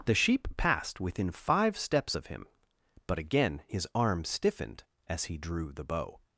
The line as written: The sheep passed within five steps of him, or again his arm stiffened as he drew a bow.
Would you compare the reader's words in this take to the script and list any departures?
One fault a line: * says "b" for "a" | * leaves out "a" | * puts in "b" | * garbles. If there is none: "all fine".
* says "but" for "or"
* says "the" for "a"